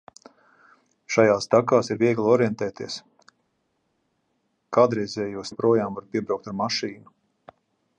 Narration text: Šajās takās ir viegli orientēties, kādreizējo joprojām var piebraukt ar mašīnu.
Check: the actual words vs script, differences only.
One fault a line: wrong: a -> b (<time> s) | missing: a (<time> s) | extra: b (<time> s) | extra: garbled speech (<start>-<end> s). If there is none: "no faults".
no faults